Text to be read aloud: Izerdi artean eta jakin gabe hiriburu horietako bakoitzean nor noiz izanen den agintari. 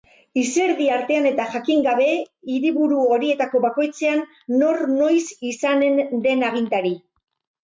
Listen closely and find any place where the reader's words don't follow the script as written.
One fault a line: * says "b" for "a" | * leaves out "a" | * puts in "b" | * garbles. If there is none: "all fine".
all fine